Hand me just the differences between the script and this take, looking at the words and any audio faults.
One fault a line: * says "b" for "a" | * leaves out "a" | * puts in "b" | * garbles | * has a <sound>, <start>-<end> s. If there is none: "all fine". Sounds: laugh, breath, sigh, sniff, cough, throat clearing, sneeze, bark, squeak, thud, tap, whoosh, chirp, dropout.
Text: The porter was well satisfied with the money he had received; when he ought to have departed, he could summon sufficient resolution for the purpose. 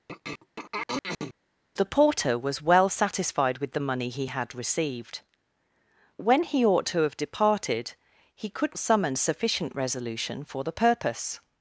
* has a throat clearing, 0.1-1.3 s